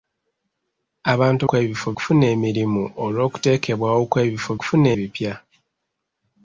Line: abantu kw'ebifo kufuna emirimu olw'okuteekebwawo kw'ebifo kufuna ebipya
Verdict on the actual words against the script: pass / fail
pass